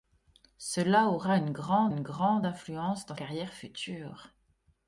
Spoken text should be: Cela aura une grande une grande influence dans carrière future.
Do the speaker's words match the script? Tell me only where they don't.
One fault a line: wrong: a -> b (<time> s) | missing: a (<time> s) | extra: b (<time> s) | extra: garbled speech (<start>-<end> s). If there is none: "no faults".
no faults